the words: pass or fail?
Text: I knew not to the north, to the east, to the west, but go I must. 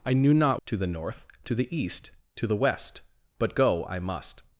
pass